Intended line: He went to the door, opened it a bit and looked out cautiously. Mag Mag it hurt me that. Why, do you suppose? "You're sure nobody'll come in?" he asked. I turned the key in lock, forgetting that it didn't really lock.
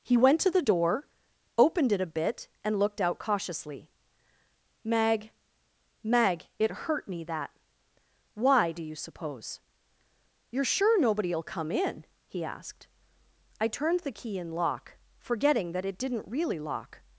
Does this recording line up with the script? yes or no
yes